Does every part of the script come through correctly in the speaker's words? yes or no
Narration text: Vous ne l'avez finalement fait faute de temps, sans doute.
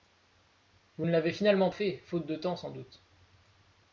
yes